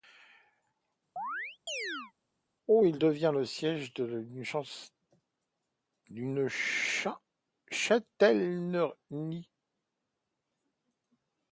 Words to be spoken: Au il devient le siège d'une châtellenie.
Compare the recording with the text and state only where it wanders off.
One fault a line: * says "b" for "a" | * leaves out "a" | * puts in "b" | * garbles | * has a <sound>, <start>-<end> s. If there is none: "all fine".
* has a chirp, 1.2-2.1 s